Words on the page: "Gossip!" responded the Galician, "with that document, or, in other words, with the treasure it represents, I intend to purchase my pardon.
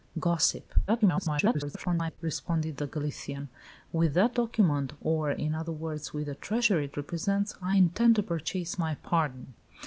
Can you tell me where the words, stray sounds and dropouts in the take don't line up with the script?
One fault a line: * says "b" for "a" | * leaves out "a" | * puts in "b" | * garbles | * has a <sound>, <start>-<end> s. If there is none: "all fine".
* garbles